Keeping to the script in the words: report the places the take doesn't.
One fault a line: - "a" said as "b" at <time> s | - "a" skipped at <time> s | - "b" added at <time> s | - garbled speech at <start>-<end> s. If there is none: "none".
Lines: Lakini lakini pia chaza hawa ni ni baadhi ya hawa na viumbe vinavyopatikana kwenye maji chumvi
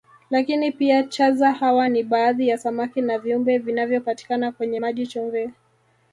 - "lakini" skipped at 0.7 s
- "ni" skipped at 2.0 s
- "hawa" said as "samaki" at 2.6 s